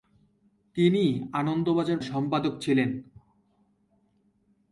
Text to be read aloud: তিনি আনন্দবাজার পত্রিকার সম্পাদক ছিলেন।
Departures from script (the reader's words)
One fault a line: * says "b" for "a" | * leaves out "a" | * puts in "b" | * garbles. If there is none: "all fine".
* leaves out "পত্রিকার"